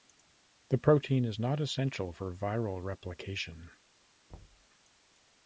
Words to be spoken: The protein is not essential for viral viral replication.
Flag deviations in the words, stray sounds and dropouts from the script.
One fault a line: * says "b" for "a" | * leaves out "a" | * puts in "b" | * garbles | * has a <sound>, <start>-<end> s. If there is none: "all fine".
* leaves out "viral"
* has a thud, 4.3-4.7 s